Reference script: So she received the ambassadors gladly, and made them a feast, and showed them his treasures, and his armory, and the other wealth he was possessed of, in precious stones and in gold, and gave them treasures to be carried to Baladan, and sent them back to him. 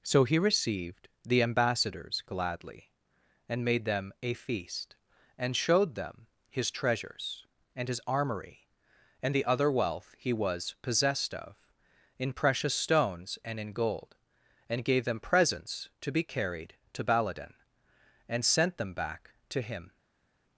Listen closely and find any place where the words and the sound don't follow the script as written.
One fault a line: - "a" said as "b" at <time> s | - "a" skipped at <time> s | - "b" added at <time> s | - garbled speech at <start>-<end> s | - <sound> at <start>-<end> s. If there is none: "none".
- "she" said as "he" at 0.2 s
- "treasures" said as "presents" at 15.2 s